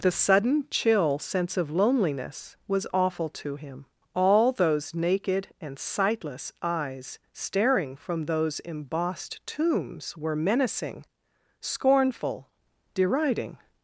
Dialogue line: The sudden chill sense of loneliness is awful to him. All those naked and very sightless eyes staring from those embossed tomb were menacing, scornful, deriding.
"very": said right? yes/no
no